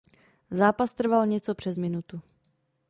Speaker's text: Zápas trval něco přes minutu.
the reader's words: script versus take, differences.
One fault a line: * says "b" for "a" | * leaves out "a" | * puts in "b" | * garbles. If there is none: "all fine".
all fine